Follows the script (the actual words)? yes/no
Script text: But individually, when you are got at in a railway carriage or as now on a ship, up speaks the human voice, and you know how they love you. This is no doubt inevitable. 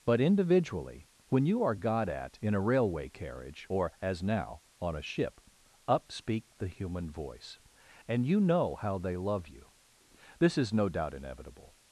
no